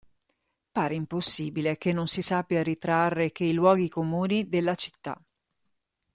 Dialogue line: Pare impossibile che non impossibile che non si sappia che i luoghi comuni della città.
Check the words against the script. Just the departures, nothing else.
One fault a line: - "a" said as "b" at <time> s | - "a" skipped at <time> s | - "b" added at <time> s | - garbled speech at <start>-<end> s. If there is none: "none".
- "impossibile che non" skipped at 2.1 s
- "ritrarre" added at 2.6 s